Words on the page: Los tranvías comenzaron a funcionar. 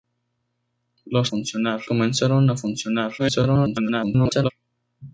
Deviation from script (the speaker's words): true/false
true